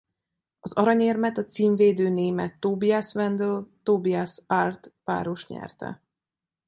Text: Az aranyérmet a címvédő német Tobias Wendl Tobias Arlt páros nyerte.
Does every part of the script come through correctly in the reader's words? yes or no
yes